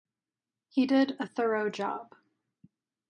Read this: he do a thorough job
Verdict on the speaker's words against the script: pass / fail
fail